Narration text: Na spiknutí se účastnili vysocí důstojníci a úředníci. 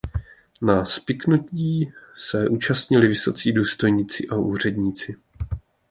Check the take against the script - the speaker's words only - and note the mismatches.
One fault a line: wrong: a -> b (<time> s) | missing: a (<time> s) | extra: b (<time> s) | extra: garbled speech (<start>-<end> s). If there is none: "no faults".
no faults